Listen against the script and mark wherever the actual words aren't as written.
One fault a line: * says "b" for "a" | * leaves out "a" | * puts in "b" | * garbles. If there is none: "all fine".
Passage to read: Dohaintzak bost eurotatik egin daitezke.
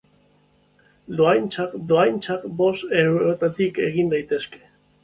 * puts in "dohaintzak"